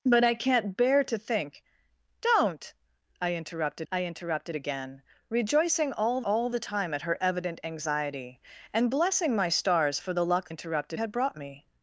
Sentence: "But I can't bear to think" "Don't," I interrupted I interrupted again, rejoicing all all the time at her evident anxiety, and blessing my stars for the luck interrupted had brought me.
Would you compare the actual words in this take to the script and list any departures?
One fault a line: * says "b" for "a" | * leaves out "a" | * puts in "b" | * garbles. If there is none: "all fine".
all fine